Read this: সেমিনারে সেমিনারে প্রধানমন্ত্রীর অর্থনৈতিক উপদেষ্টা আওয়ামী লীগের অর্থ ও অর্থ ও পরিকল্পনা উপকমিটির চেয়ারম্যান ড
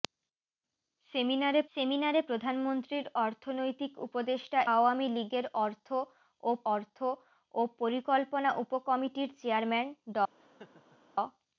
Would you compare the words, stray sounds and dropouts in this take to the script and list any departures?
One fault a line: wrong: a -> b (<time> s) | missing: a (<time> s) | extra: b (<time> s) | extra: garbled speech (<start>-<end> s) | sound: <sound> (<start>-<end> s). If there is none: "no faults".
sound: laugh (10.4-11.0 s)